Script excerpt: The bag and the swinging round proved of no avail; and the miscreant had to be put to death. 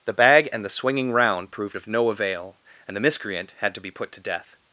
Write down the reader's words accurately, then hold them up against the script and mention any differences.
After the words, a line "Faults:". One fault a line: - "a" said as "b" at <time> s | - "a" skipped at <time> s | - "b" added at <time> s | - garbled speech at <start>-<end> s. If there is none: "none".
The bag and the swinging round proved of no avail; and the miscreant had to be put to death.
Faults:
none